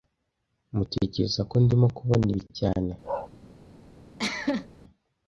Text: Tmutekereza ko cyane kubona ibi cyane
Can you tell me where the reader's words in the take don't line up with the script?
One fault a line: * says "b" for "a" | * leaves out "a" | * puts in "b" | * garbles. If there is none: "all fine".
* says "ndimo" for "cyane"